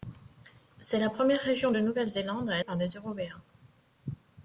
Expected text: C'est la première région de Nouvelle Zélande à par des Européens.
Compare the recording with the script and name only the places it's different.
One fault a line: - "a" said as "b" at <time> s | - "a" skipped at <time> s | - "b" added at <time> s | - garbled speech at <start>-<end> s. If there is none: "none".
none